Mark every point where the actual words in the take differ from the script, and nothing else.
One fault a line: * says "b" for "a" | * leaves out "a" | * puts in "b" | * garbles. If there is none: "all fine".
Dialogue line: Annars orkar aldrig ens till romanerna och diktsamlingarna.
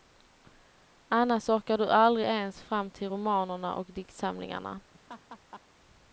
* puts in "du"
* puts in "fram"